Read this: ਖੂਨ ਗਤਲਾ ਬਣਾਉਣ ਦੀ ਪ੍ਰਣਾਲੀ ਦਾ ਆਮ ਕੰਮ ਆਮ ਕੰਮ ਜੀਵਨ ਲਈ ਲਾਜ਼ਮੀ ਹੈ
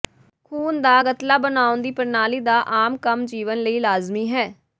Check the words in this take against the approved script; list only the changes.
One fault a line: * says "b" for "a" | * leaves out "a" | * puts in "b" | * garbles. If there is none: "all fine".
* puts in "ਦਾ"
* leaves out "ਆਮ ਕੰਮ"